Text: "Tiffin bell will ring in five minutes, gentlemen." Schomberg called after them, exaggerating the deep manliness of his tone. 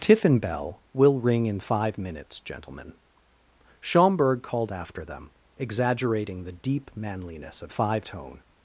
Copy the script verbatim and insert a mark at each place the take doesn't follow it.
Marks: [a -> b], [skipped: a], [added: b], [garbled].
"Tiffin bell will ring in five minutes, gentlemen." Schomberg called after them, exaggerating the deep manliness of [his -> five] tone.